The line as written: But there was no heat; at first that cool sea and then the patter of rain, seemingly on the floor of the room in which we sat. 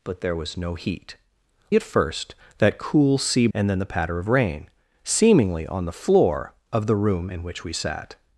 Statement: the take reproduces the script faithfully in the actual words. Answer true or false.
true